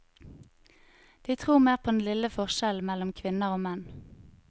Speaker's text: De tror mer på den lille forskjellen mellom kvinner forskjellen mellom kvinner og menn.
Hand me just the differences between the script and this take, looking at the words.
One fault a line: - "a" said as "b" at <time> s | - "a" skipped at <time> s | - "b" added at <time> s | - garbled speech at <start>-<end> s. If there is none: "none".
- "forskjellen mellom kvinner" skipped at 3.5 s